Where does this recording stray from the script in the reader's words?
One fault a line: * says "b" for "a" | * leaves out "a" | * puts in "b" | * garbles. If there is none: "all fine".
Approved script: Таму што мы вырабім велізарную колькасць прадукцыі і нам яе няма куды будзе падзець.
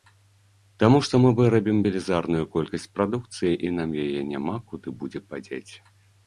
all fine